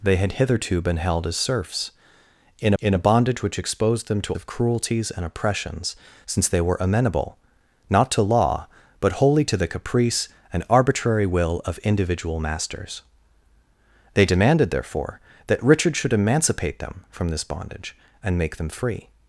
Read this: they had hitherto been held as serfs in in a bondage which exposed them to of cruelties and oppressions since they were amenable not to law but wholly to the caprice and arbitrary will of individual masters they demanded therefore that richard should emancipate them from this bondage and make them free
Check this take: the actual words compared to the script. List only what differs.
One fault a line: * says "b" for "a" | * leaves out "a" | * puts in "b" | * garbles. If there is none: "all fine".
all fine